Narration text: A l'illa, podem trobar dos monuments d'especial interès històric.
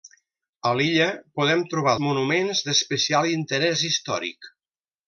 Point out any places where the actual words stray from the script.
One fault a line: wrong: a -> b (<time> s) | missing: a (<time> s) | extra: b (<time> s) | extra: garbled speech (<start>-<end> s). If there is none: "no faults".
missing: dos (1.9 s)